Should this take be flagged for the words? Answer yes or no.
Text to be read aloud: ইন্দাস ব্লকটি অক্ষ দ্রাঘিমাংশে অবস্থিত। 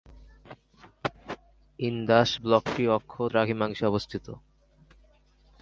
no